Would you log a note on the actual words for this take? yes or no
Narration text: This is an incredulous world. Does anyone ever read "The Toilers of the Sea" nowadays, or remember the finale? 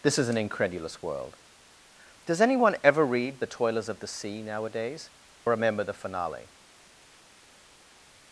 yes